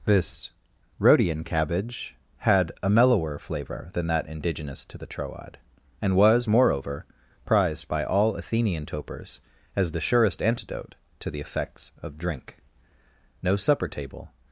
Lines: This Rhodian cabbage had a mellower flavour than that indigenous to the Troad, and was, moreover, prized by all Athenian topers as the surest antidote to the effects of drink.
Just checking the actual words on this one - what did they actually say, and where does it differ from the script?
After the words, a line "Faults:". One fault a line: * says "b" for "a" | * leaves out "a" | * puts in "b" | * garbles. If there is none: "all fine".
This Rhodian cabbage had a mellower flavour than that indigenous to the Troad, and was, moreover, prized by all Athenian topers as the surest antidote to the effects of drink. No supper table
Faults:
* puts in "No supper table"